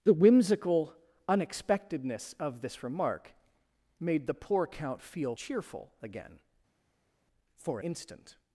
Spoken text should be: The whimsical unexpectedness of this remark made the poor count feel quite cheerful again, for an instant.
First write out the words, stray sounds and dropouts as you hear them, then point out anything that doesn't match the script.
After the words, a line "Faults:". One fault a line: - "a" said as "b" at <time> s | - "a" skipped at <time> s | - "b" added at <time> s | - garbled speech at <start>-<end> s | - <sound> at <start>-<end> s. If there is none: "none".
The whimsical unexpectedness of this remark made the poor count feel cheerful again, for instant.
Faults:
- "quite" skipped at 5.3 s
- "an" skipped at 7.8 s